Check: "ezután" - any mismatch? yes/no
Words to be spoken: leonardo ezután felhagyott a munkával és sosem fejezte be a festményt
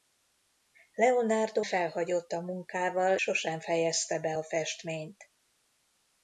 yes